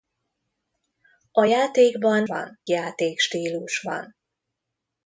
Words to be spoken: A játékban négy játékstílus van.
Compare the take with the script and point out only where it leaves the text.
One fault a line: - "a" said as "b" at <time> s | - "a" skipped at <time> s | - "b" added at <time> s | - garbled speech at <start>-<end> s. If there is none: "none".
- "négy" said as "van" at 2.2 s